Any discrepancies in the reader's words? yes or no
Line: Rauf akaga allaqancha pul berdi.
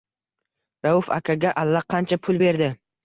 no